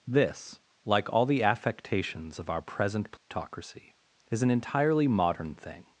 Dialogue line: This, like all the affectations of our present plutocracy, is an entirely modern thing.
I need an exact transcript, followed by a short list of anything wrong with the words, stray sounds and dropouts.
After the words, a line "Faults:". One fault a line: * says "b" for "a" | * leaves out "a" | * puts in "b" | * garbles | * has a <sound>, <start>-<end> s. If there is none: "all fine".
This, like all the affectations of our present plutocracy, is an entirely modern thing.
Faults:
* has a dropout, 3.2-3.3 s